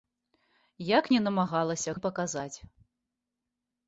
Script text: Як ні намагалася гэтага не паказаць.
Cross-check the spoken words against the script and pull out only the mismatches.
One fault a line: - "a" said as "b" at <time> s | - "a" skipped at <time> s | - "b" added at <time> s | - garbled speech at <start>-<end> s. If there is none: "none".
- "гэтага" skipped at 2.0 s